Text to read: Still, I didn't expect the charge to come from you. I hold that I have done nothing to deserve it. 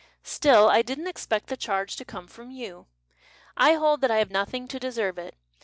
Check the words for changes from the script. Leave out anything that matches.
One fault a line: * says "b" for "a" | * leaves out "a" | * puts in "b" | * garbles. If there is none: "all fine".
* leaves out "done"